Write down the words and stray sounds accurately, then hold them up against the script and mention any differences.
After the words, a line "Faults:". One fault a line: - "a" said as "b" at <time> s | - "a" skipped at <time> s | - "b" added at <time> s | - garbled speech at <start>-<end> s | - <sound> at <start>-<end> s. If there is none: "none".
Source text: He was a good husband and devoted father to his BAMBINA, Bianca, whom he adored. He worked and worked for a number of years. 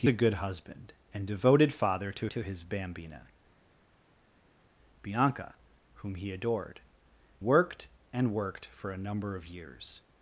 He a good husband and devoted father to to his BAMBINA, Bianca, whom he adored. Worked and worked for a number of years.
Faults:
- "was" skipped at 0.1 s
- "to" added at 2.2 s
- "He" skipped at 6.8 s